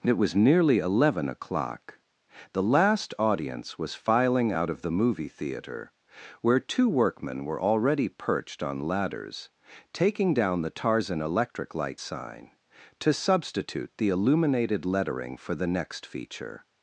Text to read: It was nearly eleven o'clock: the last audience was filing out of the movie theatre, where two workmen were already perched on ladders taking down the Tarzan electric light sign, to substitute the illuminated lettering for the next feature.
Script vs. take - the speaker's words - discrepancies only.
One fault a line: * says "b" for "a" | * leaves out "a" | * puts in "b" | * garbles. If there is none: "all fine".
all fine